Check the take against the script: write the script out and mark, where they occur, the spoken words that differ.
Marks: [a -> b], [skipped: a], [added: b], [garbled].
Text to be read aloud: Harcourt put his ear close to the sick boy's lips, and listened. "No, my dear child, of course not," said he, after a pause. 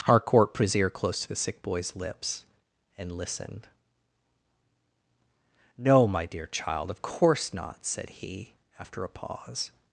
Harcourt put his ear close to the sick boy's lips, and listened. "No, my dear child, of course not," said he, after a pause.